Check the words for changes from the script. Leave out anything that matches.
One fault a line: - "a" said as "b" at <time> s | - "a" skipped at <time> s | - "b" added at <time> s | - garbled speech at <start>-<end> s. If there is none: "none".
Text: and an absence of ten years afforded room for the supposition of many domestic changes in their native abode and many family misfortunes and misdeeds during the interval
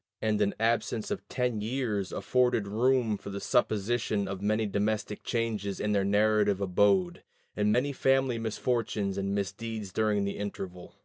none